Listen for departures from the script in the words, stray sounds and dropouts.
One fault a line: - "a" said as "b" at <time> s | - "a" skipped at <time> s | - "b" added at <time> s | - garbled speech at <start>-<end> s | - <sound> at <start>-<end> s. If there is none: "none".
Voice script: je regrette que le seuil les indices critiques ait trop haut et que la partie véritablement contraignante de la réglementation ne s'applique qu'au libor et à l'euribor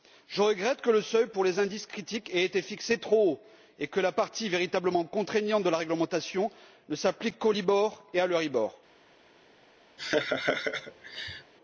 - "pour" added at 1.3 s
- "été fixé" added at 2.5 s
- laugh at 10.0-11.5 s